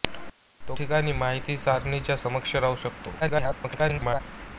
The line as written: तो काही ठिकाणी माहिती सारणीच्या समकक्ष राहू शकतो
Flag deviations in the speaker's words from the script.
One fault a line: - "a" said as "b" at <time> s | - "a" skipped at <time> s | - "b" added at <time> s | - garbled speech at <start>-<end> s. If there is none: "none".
- "काही" skipped at 0.8 s
- garbled speech at 3.2-4.2 s